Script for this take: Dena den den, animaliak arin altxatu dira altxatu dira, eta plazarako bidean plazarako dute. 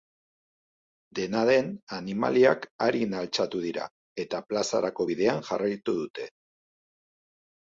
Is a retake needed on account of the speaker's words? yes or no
yes